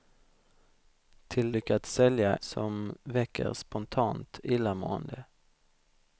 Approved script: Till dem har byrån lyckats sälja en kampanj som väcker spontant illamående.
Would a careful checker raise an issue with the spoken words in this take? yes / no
yes